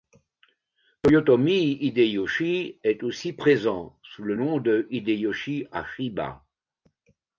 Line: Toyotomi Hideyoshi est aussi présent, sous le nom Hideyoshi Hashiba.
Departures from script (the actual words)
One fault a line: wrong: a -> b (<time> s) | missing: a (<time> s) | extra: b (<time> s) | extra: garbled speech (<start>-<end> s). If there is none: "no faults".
extra: de (4.6 s)